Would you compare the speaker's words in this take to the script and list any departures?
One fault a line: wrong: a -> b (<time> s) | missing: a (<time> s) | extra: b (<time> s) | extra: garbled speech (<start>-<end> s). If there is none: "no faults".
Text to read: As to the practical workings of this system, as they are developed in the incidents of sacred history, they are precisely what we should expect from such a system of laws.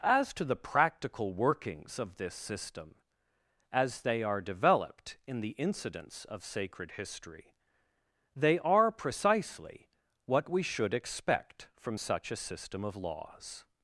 no faults